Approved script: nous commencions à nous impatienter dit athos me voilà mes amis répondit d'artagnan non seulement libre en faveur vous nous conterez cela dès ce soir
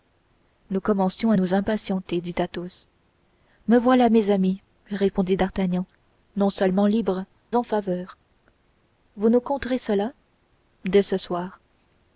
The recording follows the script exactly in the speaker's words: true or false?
true